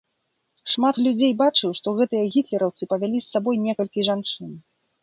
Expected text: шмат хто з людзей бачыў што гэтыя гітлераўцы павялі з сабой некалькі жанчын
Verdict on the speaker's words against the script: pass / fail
fail